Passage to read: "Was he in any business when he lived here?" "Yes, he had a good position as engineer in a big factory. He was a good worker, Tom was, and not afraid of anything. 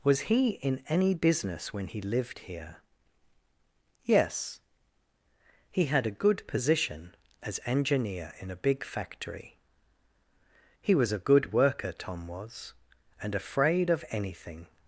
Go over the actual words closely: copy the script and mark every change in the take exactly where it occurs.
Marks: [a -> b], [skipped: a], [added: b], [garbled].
"Was he in any business when he lived here?" "Yes, he had a good position as engineer in a big factory. He was a good worker, Tom was, and [skipped: not] afraid of anything.